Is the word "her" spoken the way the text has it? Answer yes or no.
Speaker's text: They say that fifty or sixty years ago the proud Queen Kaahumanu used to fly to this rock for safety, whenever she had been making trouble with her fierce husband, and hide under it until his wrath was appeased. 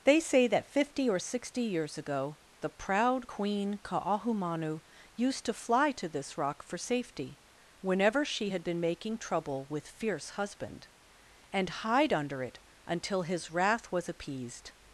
no